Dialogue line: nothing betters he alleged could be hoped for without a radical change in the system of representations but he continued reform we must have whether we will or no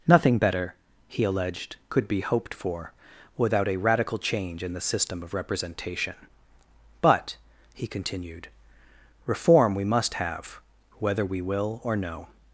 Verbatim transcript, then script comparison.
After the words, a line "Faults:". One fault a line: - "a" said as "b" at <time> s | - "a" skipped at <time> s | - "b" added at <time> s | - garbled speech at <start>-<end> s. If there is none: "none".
nothing better he alleged could be hoped for without a radical change in the system of representation but he continued reform we must have whether we will or no
Faults:
- "betters" said as "better" at 0.4 s
- "representations" said as "representation" at 5.3 s